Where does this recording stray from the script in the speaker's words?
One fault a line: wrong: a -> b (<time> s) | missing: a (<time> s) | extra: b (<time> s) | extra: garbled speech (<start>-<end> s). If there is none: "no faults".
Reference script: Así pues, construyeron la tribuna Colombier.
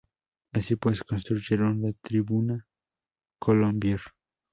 no faults